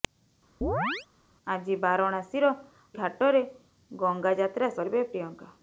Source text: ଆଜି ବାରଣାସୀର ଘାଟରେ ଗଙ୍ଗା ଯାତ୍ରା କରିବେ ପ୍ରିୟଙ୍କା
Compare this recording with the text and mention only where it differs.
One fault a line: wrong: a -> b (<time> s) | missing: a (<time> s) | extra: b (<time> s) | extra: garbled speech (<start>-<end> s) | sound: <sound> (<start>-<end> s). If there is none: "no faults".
sound: chirp (0.6-1.1 s)